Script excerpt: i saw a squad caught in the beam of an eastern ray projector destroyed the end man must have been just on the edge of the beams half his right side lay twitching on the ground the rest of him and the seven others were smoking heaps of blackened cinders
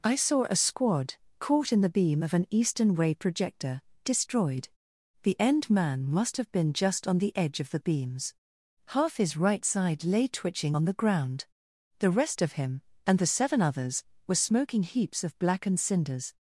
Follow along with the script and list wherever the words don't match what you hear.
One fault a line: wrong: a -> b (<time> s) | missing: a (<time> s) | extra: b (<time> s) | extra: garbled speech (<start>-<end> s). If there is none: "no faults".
wrong: ray -> way (2.9 s)